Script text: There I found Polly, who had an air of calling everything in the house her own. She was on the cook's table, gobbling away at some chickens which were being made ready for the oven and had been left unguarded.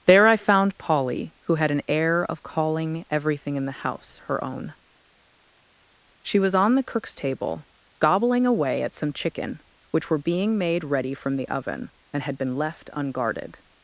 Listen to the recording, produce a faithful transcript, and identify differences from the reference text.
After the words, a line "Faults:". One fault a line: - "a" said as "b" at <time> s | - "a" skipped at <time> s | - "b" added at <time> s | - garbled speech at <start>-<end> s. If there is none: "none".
There I found Polly, who had an air of calling everything in the house her own. She was on the cook's table, gobbling away at some chicken which were being made ready from the oven and had been left unguarded.
Faults:
- "chickens" said as "chicken" at 9.1 s
- "for" said as "from" at 11.1 s